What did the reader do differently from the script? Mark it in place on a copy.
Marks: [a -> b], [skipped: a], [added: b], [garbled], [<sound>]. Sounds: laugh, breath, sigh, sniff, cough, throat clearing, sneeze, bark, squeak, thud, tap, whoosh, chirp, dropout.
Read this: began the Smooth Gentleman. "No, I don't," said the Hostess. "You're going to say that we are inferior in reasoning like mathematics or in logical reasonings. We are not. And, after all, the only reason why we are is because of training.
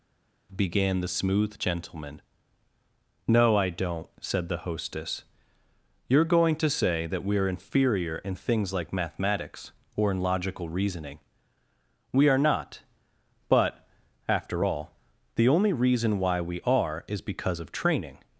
began the Smooth Gentleman. "No, I don't," said the Hostess. "You're going to say that we are inferior in [reasoning -> things] like mathematics or in logical [reasonings. -> reasoning] We are not. [And, -> But] after all, the only reason why we are is because of training.